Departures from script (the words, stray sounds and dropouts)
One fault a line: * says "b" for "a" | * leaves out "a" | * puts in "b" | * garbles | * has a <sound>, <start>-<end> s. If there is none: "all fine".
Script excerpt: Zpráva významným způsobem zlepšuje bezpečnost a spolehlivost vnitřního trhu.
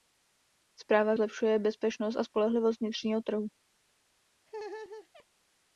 * leaves out "významným způsobem"
* has a laugh, 4.5-5.3 s